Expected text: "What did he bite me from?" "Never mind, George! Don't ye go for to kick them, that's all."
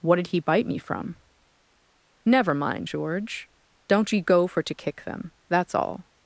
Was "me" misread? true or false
false